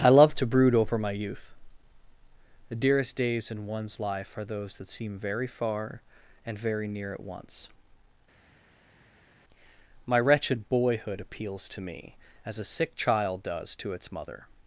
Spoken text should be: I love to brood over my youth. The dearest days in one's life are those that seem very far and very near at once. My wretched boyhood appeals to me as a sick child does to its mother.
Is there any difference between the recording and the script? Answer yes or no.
no